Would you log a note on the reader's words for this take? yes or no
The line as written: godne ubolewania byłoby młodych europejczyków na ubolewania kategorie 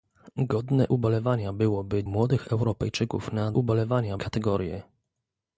no